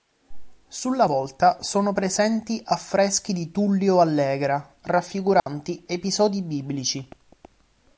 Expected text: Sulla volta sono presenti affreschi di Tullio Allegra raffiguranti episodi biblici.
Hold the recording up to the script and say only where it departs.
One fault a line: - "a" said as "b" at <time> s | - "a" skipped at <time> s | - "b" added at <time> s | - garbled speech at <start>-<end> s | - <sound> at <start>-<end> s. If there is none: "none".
- dropout at 5.4-5.5 s